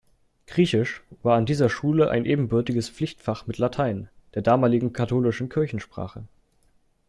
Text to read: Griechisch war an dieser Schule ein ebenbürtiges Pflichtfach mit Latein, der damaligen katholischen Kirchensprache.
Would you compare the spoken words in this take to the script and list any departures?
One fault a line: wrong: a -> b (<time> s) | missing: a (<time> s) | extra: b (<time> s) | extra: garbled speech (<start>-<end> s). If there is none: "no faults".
no faults